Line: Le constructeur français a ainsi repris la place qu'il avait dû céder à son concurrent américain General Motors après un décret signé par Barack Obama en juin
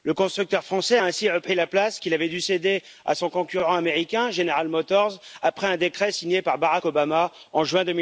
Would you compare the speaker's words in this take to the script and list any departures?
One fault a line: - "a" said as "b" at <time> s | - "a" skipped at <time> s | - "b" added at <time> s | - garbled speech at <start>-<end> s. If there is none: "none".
none